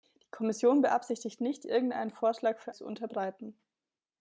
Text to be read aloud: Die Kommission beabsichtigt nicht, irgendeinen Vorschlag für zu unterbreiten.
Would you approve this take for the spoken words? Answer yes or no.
yes